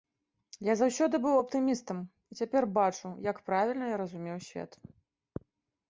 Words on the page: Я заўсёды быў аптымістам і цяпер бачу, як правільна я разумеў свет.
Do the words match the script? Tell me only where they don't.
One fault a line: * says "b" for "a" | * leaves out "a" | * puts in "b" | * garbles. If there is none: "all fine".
all fine